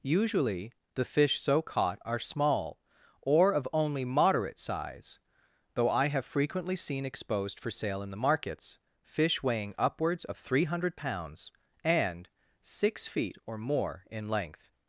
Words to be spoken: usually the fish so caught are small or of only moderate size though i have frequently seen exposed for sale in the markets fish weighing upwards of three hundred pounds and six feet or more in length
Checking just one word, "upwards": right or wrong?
right